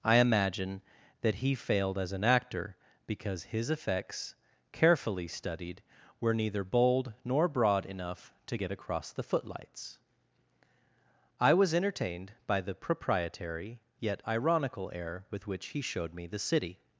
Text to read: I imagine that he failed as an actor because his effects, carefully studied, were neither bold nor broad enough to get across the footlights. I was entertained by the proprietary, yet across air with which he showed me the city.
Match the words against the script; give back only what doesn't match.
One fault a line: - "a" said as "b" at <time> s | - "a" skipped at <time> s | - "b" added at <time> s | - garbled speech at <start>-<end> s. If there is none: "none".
- "across" said as "ironical" at 14.3 s